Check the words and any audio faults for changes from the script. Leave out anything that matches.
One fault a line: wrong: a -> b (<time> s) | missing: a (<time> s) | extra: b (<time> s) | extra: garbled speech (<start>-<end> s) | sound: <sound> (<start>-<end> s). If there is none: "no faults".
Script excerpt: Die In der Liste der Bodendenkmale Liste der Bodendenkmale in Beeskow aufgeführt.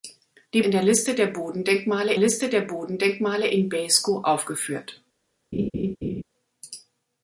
sound: laugh (5.5-6.2 s)